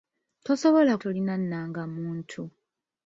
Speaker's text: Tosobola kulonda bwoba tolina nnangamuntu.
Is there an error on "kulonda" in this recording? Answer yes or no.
yes